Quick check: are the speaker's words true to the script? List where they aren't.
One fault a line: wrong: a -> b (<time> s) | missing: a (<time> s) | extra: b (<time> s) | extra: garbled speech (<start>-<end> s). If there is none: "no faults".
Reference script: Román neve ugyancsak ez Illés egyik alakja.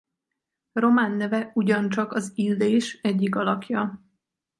wrong: ez -> az (2.1 s)